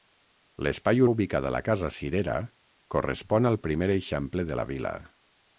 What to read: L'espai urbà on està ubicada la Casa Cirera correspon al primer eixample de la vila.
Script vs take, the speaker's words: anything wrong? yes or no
yes